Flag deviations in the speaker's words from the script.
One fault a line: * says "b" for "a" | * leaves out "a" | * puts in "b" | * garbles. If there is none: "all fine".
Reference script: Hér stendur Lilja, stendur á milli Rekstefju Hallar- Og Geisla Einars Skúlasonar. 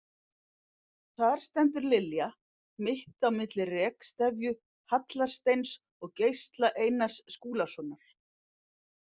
* says "Þar" for "Hér"
* says "mitt" for "stendur"
* puts in "Steins"